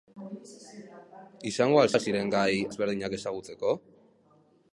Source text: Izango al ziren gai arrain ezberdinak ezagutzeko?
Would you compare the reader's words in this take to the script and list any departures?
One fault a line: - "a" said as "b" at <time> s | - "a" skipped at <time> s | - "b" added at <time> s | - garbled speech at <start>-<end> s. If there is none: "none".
- "al" added at 1.9 s
- "arrain" skipped at 2.6 s